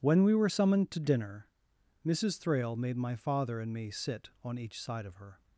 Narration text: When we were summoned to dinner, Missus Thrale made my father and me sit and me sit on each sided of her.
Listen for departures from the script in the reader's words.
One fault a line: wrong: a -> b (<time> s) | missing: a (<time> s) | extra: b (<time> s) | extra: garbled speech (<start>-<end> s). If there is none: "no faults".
missing: and me sit (4.3 s)
wrong: sided -> side (4.8 s)